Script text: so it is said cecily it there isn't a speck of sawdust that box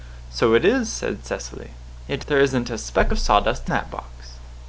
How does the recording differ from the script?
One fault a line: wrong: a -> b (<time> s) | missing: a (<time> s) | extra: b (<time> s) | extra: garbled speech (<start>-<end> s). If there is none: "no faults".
no faults